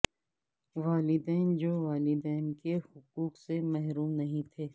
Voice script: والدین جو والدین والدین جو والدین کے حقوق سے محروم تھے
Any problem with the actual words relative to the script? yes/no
yes